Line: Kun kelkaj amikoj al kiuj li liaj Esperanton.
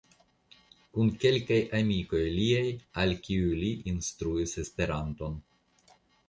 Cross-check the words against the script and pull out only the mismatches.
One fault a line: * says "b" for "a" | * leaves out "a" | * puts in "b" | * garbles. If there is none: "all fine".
* puts in "liaj"
* says "instruis" for "liaj"